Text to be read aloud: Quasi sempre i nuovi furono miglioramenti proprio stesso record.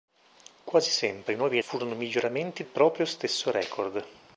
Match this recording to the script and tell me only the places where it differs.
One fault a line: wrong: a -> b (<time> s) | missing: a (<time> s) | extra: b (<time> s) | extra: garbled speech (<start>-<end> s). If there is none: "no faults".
no faults